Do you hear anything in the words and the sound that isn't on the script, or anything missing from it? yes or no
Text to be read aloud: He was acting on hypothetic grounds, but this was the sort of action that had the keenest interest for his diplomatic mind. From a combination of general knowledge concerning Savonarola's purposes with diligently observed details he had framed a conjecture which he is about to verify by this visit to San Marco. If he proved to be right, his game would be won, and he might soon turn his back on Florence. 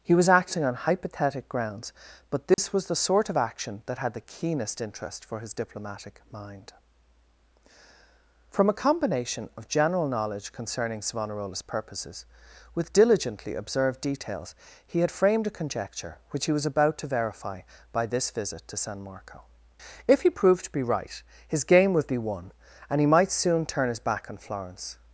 yes